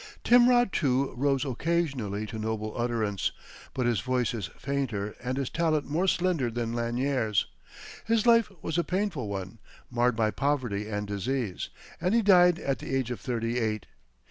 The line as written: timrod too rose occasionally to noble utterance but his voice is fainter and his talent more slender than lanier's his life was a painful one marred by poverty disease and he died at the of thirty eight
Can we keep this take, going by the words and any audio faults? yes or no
no